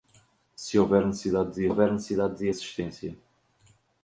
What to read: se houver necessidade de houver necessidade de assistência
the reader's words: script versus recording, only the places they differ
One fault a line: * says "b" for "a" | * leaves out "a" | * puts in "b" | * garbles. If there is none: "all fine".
all fine